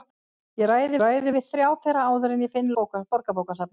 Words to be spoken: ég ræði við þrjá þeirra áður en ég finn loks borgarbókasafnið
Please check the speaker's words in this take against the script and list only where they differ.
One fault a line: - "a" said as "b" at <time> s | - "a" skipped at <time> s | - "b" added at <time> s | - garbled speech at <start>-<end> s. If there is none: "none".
- "ræði" added at 1.0 s
- "loks" skipped at 2.7 s